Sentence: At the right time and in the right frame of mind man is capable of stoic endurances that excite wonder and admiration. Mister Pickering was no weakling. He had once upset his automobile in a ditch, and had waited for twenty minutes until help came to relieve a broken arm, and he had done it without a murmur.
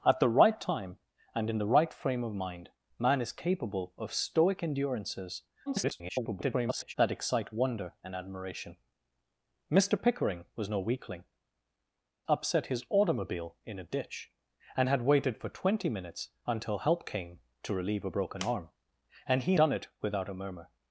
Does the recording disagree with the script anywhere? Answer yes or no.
yes